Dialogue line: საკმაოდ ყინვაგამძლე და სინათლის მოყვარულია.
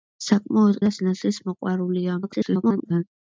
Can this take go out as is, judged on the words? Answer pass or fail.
fail